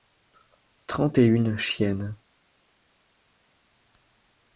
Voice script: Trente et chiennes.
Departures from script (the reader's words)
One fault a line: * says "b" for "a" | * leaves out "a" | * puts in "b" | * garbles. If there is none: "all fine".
* puts in "une"